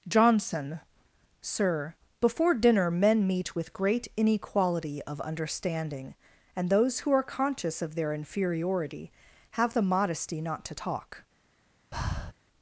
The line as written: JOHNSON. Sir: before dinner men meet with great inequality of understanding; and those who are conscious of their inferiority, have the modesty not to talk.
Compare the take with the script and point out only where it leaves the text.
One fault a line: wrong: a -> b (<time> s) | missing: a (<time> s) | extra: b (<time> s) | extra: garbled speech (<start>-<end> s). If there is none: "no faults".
no faults